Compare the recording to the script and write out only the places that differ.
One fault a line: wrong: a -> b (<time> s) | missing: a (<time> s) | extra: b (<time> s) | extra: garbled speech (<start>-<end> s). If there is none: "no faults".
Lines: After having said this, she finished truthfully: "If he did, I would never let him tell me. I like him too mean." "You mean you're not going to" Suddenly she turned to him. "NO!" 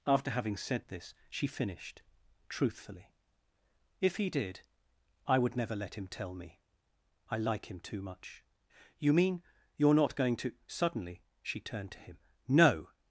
wrong: mean -> much (8.0 s)